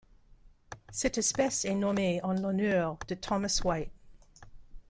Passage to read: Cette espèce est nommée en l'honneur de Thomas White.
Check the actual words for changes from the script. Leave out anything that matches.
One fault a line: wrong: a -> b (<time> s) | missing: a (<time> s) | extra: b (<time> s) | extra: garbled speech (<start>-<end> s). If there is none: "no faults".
no faults